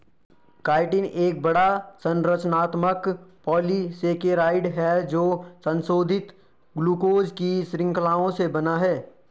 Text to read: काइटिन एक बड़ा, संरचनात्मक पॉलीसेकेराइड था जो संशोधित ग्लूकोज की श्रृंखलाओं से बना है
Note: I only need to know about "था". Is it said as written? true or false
false